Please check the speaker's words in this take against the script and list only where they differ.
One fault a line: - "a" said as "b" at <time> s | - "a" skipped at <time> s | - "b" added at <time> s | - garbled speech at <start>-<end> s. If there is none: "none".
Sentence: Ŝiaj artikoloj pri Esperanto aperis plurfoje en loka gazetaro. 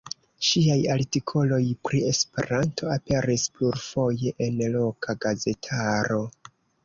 none